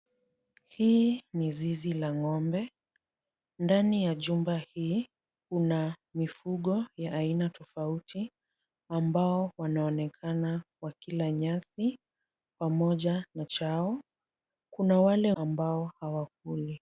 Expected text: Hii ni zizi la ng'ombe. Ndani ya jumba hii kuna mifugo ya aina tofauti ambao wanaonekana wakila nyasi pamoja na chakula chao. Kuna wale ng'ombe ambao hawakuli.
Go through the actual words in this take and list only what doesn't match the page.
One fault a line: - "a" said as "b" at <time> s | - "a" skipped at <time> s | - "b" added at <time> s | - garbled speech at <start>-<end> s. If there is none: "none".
- "chakula" skipped at 13.4 s
- "ng'ombe" skipped at 15.3 s